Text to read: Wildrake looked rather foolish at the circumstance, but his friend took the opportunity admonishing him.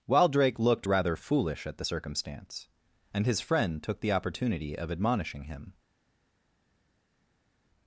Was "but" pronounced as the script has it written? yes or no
no